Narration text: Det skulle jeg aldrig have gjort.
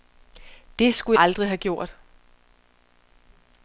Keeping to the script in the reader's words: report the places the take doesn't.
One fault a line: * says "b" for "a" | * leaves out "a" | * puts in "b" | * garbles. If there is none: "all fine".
* leaves out "jeg"